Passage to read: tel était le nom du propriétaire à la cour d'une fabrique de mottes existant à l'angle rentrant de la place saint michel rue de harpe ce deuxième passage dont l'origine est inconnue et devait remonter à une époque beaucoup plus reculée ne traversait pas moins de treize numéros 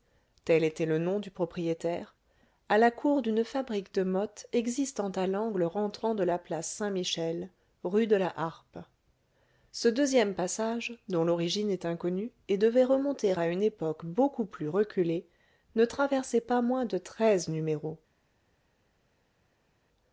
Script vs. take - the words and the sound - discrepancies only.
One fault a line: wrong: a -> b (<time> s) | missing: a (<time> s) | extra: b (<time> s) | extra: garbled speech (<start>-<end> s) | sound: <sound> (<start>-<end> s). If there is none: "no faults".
extra: la (8.2 s)